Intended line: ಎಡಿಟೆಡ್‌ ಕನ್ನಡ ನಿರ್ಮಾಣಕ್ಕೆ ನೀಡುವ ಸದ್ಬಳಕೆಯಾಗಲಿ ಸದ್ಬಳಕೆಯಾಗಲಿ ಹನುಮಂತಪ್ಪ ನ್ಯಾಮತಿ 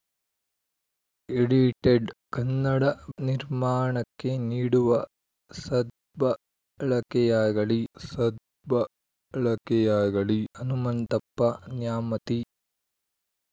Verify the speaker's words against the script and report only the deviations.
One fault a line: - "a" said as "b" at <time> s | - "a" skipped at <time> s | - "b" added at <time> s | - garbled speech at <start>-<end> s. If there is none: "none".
none